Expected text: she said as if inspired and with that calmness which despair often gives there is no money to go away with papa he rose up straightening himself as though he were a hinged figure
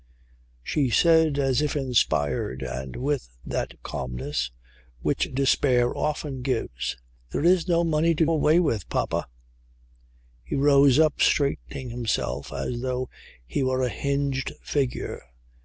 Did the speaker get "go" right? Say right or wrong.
wrong